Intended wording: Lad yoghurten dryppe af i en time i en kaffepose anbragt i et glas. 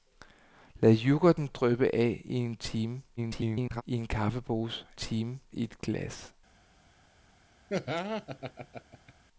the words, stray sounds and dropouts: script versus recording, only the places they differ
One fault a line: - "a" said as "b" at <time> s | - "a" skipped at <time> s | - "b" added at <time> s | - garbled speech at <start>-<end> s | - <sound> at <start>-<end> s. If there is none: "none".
- garbled speech at 3.2-3.8 s
- "anbragt" said as "time" at 4.9 s
- laugh at 7.7-9.1 s